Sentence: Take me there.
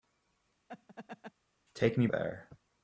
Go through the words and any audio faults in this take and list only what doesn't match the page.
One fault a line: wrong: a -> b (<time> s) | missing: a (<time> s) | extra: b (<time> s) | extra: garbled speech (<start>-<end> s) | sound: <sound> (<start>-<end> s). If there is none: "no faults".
sound: laugh (0.7-1.3 s)